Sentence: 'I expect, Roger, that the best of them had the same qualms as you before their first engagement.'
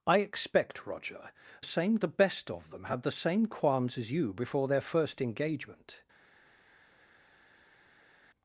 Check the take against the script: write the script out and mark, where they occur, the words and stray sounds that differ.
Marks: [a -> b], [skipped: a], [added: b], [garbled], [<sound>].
'I expect, Roger, [that -> same] the best of them had the same qualms as you before their first engagement.'